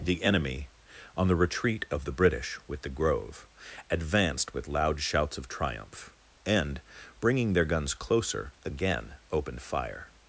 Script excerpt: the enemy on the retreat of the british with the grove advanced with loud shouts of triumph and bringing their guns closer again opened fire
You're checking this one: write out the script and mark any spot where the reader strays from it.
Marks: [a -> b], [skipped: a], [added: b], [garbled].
the enemy on the retreat of the british with the grove advanced with loud shouts of triumph and bringing their guns closer again opened fire